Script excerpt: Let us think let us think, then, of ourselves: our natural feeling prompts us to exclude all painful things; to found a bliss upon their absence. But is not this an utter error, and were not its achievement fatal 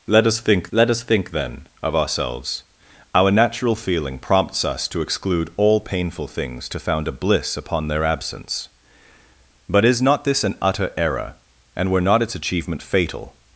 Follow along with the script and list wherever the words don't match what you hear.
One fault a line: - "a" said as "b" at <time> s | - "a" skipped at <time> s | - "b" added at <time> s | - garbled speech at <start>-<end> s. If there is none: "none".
none